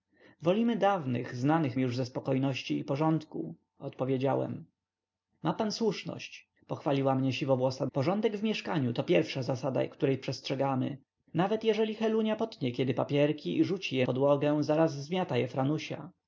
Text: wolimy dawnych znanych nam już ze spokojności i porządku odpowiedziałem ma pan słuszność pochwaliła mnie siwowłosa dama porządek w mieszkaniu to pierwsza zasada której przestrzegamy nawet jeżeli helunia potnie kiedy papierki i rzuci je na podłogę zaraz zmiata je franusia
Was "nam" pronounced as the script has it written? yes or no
no